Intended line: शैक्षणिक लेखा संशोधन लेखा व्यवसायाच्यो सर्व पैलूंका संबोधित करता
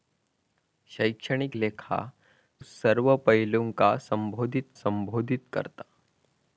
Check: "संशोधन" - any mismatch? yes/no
yes